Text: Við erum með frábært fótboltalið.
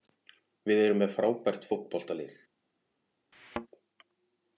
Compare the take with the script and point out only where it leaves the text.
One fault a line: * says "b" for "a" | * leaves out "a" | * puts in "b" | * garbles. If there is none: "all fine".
all fine